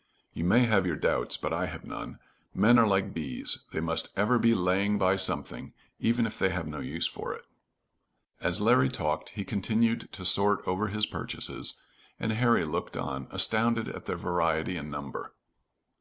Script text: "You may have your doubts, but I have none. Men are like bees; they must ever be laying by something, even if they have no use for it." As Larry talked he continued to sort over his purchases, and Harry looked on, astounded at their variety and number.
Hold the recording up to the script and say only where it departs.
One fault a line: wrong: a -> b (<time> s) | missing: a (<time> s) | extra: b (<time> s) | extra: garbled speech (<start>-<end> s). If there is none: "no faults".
no faults